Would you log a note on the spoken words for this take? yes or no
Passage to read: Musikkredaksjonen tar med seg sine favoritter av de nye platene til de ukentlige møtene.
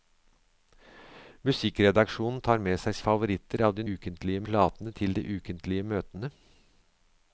yes